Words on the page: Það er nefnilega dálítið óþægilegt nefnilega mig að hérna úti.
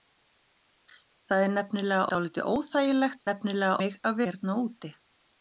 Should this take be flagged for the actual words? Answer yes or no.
no